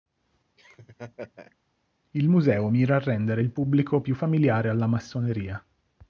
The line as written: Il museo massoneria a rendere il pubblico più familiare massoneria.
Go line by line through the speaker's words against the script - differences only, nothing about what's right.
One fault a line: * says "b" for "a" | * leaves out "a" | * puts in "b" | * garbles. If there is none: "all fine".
* says "mira" for "massoneria"
* puts in "alla"